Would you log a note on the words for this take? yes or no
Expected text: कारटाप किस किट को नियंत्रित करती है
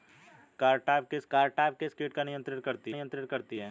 yes